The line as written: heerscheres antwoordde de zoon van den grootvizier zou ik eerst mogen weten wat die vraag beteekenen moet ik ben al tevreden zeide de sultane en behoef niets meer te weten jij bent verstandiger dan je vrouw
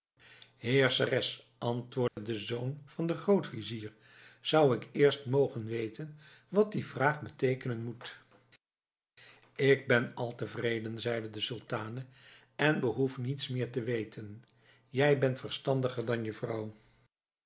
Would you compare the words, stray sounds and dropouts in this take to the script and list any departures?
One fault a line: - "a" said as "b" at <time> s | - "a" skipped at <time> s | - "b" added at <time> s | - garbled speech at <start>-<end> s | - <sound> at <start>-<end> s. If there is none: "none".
- dropout at 2.1-2.2 s